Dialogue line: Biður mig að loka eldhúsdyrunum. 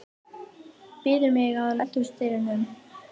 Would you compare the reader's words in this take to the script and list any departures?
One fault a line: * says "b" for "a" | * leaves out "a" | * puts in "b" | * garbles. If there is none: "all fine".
* leaves out "loka"